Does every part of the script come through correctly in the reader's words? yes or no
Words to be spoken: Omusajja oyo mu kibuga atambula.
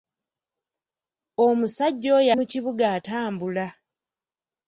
yes